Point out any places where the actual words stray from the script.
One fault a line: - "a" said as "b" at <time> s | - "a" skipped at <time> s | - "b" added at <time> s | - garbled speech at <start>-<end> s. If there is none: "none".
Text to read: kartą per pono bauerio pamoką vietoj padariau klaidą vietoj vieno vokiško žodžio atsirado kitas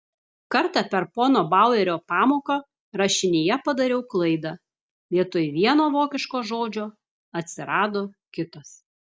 - "vietoj" said as "rašinyje" at 3.0 s